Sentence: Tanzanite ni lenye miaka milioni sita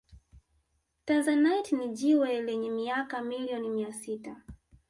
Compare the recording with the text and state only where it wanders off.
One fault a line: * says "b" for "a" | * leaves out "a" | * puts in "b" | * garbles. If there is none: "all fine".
* puts in "jiwe"
* puts in "mia"